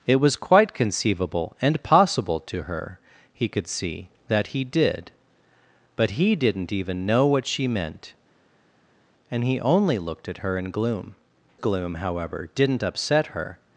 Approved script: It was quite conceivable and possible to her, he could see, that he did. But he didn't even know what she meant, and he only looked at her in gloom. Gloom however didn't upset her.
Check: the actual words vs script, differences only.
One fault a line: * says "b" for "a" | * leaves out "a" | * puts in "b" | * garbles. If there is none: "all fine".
all fine